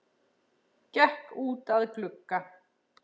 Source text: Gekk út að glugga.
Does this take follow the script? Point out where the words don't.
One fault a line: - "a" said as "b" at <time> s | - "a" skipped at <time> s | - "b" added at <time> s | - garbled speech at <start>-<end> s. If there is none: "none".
none